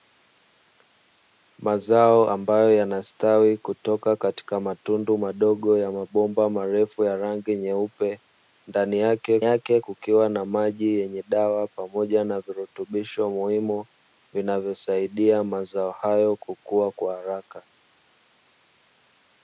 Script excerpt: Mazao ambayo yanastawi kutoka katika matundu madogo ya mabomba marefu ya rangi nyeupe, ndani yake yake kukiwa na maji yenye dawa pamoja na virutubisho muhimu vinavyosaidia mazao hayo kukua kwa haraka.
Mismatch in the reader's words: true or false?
false